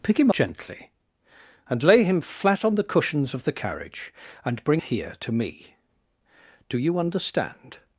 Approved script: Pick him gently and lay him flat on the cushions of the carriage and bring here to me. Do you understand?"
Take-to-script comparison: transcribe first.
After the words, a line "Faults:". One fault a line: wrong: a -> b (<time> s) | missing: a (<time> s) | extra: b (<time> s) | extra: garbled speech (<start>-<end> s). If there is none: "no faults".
Pick him gently and lay him flat on the cushions of the carriage and bring here to me. Do you understand?"
Faults:
no faults